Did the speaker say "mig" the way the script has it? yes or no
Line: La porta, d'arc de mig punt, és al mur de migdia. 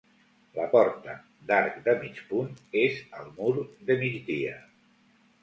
yes